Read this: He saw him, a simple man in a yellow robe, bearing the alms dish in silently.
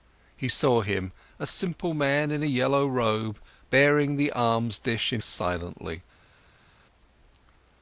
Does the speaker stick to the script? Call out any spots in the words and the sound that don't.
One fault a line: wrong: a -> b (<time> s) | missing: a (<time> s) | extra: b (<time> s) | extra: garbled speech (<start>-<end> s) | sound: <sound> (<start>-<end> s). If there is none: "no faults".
no faults